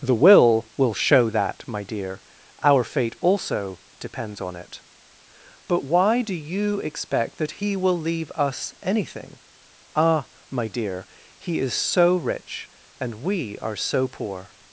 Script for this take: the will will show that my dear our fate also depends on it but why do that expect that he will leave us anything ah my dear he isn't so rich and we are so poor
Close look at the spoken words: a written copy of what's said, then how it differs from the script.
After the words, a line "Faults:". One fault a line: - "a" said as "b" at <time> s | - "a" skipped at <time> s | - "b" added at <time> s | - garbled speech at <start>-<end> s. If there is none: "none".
the will will show that my dear our fate also depends on it but why do you expect that he will leave us anything ah my dear he is so rich and we are so poor
Faults:
- "that" said as "you" at 6.4 s
- "isn't" said as "is" at 11.6 s